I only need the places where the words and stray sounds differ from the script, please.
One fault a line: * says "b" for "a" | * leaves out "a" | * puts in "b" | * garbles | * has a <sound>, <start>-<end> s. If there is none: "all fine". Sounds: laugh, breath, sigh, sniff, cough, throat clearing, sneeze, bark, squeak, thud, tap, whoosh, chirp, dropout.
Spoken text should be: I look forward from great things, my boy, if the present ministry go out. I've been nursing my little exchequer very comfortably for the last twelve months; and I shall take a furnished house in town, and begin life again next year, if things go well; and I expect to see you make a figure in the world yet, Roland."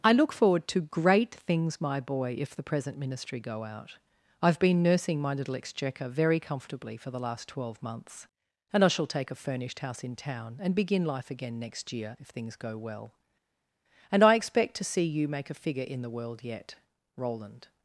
* says "to" for "from"